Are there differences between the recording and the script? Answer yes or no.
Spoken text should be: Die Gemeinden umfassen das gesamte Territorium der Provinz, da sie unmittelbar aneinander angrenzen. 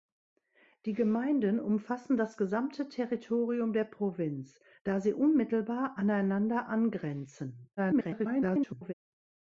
yes